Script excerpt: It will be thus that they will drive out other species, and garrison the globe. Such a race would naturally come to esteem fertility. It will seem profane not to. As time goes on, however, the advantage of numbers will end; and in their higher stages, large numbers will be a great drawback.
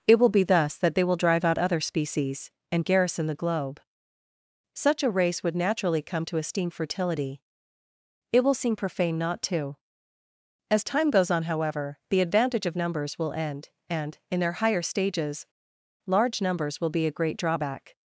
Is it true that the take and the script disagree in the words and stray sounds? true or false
false